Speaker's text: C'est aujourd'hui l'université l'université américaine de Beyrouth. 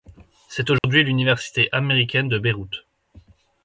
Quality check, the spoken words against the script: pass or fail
fail